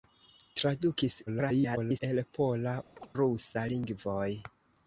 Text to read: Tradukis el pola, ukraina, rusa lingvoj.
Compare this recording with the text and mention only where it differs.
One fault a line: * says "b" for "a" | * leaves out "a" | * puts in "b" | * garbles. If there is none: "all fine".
* garbles
* leaves out "ukraina"